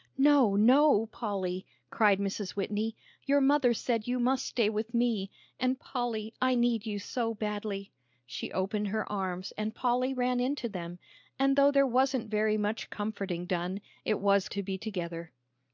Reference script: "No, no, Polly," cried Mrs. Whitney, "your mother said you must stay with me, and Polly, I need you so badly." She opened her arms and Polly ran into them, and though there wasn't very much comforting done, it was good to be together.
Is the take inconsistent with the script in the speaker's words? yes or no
yes